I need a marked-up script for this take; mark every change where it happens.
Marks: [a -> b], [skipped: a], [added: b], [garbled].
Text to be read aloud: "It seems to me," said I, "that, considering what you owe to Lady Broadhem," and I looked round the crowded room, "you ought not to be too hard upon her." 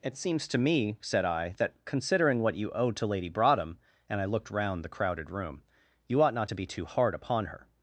"It seems to me," said I, "that, considering what you owe to Lady Broadhem," and I looked round the crowded room, "you ought not to be too hard upon her."